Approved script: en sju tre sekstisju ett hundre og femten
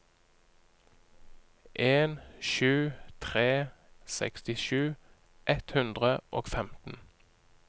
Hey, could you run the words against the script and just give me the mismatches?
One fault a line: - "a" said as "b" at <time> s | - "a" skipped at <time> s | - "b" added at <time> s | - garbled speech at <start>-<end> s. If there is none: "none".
none